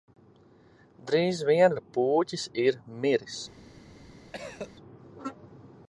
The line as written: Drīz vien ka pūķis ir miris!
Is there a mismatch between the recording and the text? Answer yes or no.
no